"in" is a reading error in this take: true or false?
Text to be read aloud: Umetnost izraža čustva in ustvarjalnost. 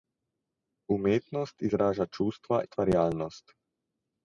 true